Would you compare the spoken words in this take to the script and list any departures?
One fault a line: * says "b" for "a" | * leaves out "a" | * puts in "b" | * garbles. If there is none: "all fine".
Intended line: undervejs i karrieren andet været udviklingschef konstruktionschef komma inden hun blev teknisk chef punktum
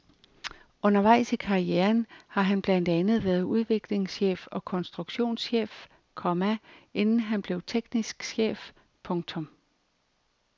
* puts in "har han blandt"
* puts in "og"
* says "han" for "hun"